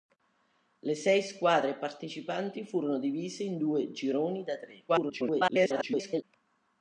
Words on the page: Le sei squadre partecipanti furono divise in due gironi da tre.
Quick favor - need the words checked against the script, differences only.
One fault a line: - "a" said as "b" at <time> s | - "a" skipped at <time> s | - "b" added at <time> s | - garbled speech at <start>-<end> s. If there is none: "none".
- garbled speech at 4.9-6.2 s